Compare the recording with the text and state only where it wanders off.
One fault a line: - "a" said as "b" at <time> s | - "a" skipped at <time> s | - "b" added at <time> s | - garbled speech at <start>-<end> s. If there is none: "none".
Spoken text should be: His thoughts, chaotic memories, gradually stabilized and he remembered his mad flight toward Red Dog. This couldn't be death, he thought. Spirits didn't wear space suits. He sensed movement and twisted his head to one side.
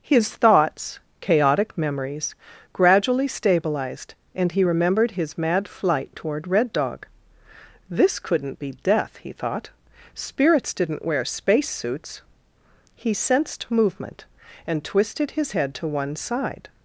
none